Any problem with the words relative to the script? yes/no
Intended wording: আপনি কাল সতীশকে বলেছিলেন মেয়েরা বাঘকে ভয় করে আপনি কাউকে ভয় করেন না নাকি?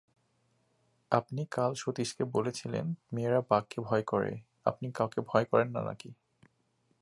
no